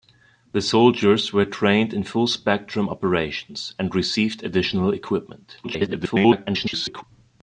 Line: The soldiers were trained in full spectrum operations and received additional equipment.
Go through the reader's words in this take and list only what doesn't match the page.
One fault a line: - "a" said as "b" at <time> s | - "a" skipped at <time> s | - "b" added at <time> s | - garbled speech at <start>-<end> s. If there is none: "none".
- garbled speech at 5.6-7.0 s